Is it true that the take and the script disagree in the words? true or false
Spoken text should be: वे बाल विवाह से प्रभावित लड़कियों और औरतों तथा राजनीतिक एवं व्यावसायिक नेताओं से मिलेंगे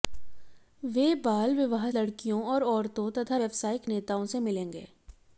true